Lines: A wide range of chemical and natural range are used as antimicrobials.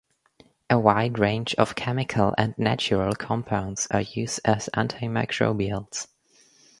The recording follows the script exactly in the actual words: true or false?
false